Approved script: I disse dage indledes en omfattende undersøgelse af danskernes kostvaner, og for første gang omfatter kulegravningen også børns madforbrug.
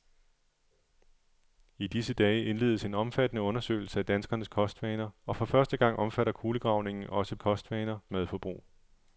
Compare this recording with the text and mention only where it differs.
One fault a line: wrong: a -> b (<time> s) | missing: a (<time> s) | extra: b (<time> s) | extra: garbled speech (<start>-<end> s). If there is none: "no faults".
wrong: børns -> kostvaner (7.4 s)